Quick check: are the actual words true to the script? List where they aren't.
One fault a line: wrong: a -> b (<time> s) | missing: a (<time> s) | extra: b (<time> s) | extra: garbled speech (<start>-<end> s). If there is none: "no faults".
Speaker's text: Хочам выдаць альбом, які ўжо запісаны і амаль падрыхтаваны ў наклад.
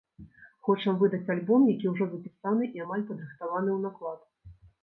no faults